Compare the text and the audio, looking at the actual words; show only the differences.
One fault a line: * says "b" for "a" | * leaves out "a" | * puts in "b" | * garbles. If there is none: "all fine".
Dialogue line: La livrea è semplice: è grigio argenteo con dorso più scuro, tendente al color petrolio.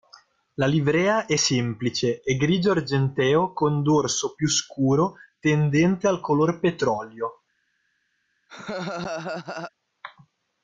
all fine